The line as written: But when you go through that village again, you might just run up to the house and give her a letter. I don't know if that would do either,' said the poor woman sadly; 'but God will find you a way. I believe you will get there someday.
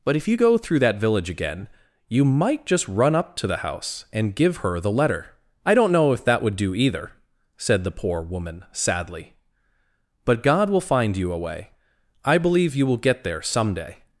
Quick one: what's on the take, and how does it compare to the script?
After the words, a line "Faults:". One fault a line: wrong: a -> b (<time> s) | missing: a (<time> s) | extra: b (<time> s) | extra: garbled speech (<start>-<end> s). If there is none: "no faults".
But if you go through that village again, you might just run up to the house and give her the letter. I don't know if that would do either,' said the poor woman sadly; 'but God will find you a way. I believe you will get there someday.
Faults:
wrong: when -> if (0.1 s)
wrong: a -> the (4.8 s)